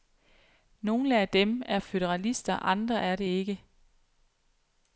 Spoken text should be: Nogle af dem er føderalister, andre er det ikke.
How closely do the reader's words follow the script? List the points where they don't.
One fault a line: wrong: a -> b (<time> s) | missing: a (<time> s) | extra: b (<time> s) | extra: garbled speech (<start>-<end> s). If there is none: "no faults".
no faults